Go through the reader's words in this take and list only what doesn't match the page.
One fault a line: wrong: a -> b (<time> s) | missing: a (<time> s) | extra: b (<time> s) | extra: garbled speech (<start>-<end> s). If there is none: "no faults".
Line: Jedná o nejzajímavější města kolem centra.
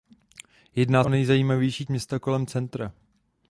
no faults